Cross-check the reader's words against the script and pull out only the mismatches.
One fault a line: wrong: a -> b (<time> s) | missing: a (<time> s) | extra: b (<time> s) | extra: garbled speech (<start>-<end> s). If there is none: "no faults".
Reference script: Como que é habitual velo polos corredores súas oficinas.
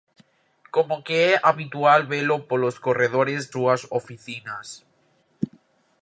no faults